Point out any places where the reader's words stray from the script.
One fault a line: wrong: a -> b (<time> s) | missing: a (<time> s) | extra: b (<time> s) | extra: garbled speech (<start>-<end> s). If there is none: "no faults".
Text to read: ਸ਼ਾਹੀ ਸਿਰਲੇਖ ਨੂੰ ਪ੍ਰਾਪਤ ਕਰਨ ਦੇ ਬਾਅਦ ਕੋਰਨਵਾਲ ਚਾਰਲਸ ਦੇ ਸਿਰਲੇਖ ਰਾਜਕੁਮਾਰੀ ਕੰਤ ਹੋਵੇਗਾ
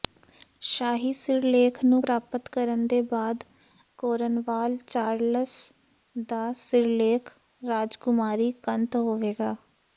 wrong: ਦੇ -> ਦਾ (6.3 s)